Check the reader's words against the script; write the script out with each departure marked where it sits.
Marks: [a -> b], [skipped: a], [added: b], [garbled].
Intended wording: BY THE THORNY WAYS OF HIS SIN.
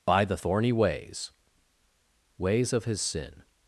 BY THE THORNY WAYS [added: WAYS] OF HIS SIN.